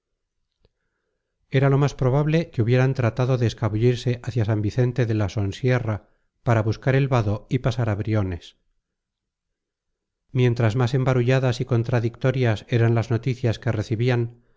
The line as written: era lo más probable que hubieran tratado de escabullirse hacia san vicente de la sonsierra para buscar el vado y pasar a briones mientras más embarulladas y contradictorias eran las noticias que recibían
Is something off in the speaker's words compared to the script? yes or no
no